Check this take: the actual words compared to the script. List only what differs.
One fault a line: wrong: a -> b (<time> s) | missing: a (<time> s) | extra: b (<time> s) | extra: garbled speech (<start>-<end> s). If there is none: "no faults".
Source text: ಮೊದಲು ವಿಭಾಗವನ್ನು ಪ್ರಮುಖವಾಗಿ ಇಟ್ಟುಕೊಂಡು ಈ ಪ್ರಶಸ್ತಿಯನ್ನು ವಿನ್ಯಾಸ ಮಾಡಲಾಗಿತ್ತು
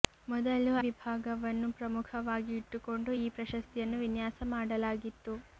no faults